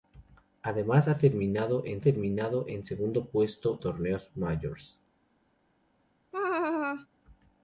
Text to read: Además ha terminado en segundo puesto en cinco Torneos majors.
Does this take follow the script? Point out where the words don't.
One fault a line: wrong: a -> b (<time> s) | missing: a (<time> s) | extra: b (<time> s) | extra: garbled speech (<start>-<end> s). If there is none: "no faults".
extra: terminado en (2.0 s)
missing: en cinco (3.8 s)